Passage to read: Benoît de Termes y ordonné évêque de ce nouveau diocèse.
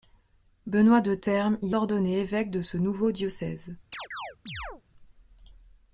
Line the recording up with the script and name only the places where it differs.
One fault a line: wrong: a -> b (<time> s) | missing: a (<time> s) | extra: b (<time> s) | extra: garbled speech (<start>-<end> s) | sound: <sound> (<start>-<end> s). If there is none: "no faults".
sound: chirp (3.9-4.8 s)